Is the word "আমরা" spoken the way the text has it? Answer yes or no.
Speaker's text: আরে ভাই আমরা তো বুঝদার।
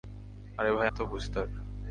no